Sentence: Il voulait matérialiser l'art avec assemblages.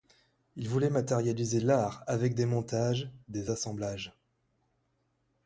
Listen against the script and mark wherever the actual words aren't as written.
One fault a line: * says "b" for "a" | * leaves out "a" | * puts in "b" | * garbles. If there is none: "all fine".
* puts in "des montages des"